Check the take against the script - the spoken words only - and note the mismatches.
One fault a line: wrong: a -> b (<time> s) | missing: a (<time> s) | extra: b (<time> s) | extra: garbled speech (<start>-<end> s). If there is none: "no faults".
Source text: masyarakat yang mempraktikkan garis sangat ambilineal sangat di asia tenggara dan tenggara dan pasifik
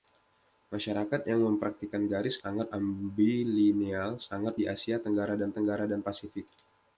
no faults